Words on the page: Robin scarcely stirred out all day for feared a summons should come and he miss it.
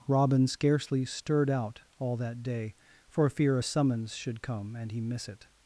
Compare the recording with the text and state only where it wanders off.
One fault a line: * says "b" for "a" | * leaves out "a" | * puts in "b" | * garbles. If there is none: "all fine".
* puts in "that"
* says "fear" for "feared"